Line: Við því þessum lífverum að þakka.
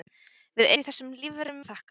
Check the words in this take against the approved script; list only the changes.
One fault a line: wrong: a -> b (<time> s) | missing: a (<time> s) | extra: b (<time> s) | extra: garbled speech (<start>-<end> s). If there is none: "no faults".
no faults